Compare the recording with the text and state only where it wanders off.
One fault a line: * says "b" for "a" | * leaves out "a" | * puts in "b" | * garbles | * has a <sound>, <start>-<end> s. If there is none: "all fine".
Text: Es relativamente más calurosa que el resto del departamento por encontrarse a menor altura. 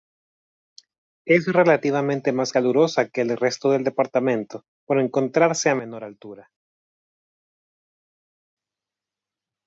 all fine